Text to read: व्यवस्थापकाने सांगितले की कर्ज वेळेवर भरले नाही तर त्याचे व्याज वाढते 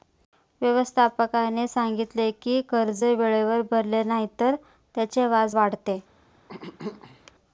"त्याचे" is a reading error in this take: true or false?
false